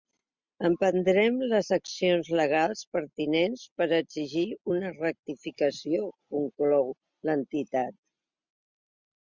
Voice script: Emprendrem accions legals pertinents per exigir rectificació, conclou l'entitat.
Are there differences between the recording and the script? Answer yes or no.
yes